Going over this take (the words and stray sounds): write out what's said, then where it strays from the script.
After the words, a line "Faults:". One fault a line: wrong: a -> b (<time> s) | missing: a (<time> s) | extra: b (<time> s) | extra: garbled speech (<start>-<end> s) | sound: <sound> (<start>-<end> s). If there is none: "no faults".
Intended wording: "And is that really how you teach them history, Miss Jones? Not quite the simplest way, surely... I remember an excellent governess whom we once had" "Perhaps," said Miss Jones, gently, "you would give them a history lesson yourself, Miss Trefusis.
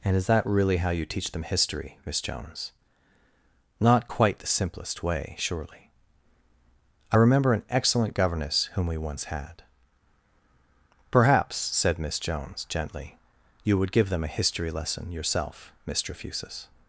"And is that really how you teach them history, Miss Jones? Not quite the simplest way, surely... I remember an excellent governess whom we once had" "Perhaps," said Miss Jones, gently, "you would give them a history lesson yourself, Miss Trefusis.
Faults:
no faults